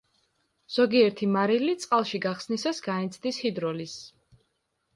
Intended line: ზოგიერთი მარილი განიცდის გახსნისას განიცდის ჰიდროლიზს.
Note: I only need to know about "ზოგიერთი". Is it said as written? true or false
true